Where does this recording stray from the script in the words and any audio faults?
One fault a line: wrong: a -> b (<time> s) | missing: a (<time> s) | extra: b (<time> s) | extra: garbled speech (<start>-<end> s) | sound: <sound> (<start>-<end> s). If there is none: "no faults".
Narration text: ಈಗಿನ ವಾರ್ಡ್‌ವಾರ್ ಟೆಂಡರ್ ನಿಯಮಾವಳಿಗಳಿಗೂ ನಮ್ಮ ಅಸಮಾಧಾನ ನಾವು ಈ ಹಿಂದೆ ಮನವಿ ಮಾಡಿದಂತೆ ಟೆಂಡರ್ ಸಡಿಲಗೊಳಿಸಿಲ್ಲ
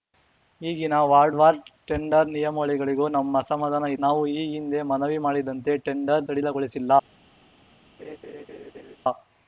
sound: laugh (8.0-9.0 s)